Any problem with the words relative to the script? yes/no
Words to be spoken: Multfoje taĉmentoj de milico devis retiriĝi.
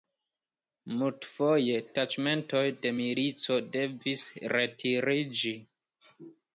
no